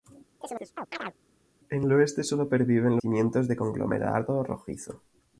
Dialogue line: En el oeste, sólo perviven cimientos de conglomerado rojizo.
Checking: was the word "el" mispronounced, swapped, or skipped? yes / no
no